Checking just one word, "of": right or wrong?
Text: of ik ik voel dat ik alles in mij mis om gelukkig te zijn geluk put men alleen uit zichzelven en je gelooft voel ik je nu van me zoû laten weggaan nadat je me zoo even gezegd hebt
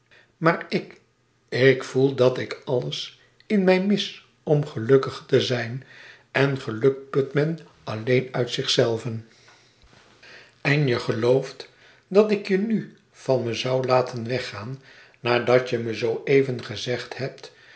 wrong